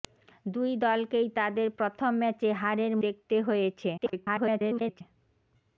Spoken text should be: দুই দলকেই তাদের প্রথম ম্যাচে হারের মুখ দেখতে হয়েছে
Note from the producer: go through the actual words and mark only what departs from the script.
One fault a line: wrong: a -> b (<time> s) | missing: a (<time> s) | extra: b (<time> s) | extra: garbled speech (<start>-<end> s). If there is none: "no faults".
missing: মুখ (2.9 s)
extra: garbled speech (4.0-5.0 s)